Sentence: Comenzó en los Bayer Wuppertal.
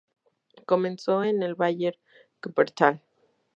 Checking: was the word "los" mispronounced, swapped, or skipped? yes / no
yes